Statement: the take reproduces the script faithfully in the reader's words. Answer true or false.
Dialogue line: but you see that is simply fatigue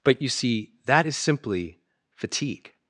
true